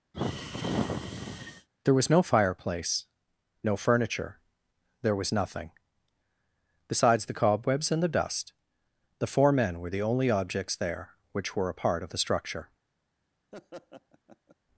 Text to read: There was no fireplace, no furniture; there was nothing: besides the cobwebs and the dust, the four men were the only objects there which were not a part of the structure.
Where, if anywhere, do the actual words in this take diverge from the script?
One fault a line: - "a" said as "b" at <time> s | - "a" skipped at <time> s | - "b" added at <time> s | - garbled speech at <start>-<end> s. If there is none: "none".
- "not" skipped at 11.7 s